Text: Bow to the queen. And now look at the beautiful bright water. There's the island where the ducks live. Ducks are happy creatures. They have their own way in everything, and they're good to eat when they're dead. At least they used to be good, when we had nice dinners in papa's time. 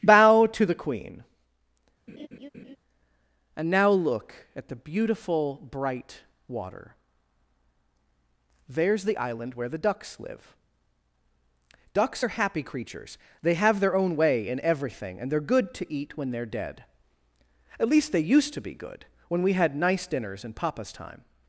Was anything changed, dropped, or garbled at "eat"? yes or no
no